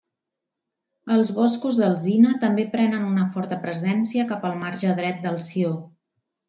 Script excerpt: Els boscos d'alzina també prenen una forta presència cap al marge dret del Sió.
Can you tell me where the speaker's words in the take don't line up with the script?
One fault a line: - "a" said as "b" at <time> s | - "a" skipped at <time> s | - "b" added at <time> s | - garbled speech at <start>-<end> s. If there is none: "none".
none